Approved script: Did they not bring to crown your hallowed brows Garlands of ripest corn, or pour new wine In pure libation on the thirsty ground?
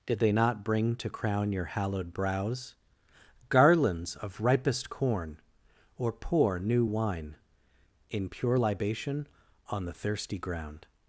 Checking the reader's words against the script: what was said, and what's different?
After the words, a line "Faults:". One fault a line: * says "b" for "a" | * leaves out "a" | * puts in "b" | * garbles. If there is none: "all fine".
Did they not bring to crown your hallowed brows Garlands of ripest corn, or pour new wine In pure libation on the thirsty ground?
Faults:
all fine